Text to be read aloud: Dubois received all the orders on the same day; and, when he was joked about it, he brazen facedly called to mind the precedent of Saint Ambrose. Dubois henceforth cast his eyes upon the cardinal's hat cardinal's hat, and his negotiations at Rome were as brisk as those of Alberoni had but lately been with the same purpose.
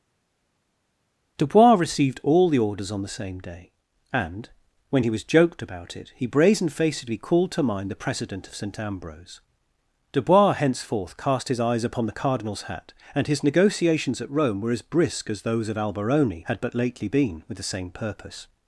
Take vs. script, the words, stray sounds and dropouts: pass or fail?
fail